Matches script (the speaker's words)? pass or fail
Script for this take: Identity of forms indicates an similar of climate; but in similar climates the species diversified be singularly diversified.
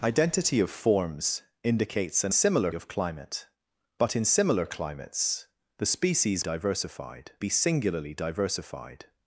pass